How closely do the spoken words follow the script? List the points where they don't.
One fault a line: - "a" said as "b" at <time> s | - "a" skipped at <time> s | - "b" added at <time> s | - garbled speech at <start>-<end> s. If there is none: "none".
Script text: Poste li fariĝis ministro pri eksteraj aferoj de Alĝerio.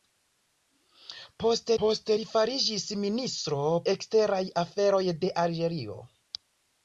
- "poste" added at 1.8 s
- "pri" skipped at 3.6 s